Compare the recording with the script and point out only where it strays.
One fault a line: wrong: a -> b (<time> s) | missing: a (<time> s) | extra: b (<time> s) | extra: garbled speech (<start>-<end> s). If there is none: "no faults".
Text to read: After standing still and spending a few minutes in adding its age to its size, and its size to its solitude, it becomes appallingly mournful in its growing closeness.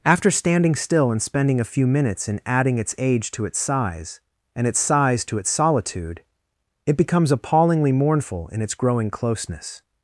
no faults